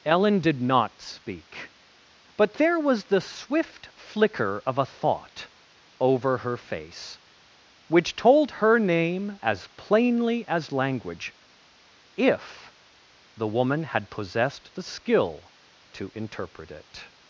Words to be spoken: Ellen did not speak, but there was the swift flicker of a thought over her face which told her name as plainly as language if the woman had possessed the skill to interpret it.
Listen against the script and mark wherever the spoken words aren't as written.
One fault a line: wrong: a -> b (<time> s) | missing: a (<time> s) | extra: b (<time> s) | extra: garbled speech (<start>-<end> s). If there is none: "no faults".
no faults